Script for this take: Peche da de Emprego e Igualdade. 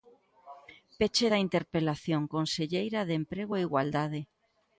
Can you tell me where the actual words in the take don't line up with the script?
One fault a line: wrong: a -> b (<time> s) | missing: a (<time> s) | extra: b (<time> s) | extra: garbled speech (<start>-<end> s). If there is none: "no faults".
extra: interpelación conselleira (1.4 s)